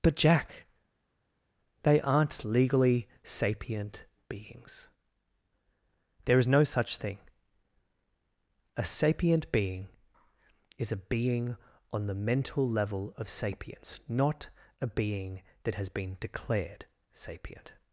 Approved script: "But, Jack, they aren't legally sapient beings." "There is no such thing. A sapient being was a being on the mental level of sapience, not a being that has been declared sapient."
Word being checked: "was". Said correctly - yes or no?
no